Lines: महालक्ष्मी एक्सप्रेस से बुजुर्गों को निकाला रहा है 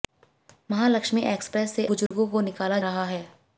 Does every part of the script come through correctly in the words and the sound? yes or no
no